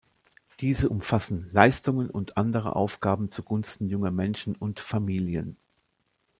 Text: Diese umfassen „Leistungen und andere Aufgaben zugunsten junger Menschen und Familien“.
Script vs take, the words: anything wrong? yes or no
no